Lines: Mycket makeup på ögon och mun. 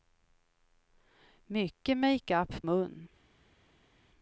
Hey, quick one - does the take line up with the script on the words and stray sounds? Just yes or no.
no